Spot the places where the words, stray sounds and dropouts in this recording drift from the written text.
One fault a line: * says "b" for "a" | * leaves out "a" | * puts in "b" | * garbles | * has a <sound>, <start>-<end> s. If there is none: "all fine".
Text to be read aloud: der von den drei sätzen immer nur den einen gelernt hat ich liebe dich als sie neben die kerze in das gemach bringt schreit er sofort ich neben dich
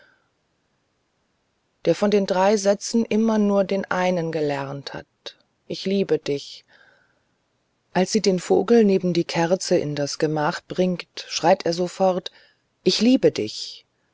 * puts in "den vogel"
* says "liebe" for "neben"